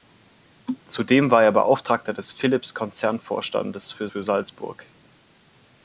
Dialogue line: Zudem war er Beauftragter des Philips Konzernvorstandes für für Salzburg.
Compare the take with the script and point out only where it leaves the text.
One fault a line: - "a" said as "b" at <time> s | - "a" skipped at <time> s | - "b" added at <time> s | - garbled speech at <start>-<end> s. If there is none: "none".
none